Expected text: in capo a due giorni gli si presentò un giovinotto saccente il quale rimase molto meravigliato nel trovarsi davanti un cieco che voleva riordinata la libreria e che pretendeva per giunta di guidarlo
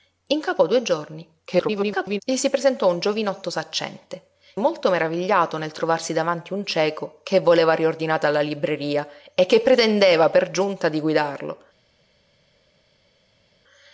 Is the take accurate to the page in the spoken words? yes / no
no